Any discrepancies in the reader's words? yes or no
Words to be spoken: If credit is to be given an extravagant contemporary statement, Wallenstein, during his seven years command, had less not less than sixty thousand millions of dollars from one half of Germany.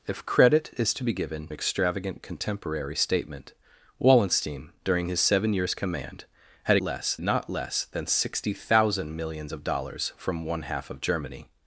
no